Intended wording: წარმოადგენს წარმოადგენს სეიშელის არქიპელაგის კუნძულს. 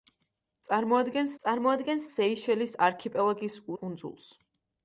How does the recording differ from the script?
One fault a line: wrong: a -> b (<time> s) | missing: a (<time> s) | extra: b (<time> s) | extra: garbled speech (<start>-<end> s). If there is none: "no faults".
no faults